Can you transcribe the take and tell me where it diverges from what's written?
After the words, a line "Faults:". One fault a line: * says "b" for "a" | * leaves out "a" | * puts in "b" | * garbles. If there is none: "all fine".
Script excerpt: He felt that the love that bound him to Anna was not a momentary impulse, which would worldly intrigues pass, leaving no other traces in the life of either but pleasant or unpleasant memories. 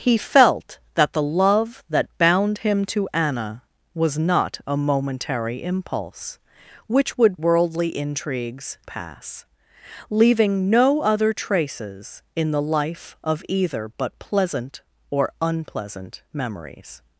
He felt that the love that bound him to Anna was not a momentary impulse, which would worldly intrigues pass, leaving no other traces in the life of either but pleasant or unpleasant memories.
Faults:
all fine